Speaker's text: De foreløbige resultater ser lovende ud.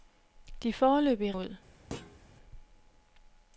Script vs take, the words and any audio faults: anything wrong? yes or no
yes